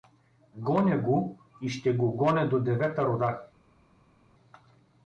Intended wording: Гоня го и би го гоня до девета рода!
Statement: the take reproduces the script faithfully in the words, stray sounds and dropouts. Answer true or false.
false